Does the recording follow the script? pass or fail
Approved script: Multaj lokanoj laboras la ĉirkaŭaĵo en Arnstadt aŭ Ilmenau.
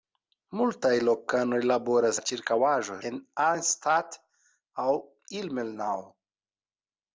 pass